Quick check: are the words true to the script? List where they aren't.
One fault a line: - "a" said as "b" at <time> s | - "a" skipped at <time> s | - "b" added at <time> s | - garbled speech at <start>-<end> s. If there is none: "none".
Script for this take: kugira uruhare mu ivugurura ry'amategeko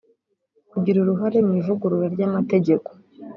none